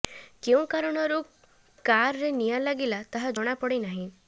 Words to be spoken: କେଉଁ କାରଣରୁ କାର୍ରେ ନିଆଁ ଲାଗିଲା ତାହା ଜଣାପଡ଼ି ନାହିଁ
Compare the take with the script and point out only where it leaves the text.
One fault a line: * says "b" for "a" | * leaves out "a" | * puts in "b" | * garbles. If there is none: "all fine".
all fine